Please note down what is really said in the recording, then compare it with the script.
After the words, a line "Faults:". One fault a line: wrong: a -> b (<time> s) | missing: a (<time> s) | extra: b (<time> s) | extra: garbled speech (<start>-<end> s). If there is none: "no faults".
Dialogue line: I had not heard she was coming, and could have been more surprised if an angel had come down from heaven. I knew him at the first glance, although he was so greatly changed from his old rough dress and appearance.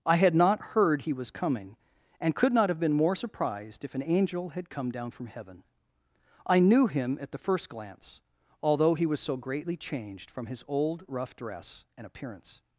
I had not heard he was coming, and could not have been more surprised if an angel had come down from heaven. I knew him at the first glance, although he was so greatly changed from his old rough dress and appearance.
Faults:
wrong: she -> he (1.0 s)
extra: not (2.5 s)